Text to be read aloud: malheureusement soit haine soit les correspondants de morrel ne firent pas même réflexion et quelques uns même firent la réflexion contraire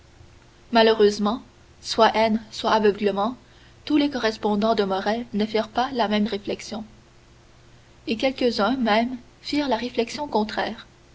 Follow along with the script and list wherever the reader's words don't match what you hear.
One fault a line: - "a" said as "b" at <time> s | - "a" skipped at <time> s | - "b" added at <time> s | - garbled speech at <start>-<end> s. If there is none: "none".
- "aveuglement tous" added at 2.7 s
- "la" added at 5.9 s